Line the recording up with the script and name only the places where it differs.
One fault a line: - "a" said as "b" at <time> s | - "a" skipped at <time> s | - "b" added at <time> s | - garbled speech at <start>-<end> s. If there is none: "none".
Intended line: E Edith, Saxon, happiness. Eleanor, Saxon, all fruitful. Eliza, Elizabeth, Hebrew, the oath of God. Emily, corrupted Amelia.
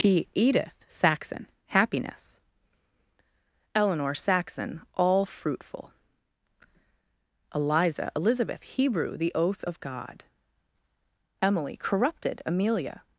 none